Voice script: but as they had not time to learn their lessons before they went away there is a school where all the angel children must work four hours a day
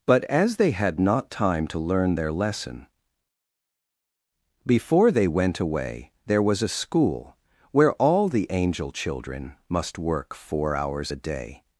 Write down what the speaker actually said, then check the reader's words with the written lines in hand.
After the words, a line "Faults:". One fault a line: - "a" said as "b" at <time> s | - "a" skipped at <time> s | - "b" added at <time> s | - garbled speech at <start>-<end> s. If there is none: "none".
but as they had not time to learn their lesson before they went away there was a school where all the angel children must work four hours a day
Faults:
- "lessons" said as "lesson" at 2.3 s
- "is" said as "was" at 6.4 s